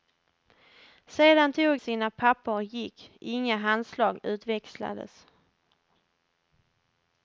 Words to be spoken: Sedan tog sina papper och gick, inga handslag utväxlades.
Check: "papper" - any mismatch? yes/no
no